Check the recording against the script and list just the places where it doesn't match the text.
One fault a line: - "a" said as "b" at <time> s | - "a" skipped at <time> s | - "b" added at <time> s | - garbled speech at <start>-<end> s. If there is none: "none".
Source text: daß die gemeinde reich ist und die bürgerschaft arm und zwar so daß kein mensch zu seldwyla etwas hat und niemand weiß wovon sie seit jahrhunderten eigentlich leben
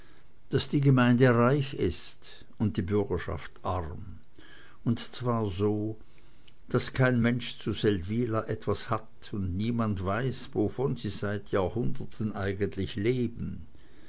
none